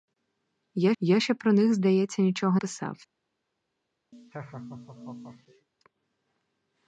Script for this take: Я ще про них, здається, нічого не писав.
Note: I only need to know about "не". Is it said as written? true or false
false